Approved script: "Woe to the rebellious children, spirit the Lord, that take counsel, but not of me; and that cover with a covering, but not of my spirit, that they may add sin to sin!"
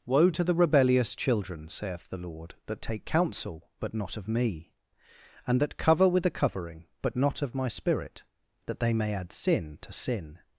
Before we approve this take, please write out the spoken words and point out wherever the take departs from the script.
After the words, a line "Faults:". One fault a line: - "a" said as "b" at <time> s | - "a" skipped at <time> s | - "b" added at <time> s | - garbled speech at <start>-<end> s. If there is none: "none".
"Woe to the rebellious children, saith the Lord, that take counsel, but not of me; and that cover with a covering, but not of my spirit, that they may add sin to sin!"
Faults:
- "spirit" said as "saith" at 1.7 s